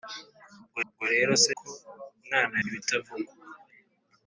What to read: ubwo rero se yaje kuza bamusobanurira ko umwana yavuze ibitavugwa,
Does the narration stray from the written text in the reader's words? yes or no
yes